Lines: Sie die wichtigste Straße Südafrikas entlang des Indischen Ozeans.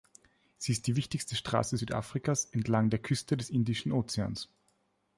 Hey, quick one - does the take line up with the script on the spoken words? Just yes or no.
no